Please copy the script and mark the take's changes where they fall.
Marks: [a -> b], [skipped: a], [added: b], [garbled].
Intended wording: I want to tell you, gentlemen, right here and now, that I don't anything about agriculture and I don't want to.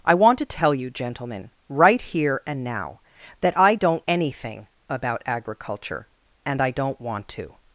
I want to tell you, gentlemen, right here and now, that I don't anything about agriculture and I don't want to.